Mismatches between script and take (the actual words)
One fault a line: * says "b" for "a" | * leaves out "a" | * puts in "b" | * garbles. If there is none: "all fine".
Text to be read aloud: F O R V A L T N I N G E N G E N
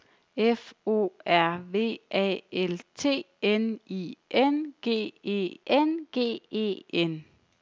all fine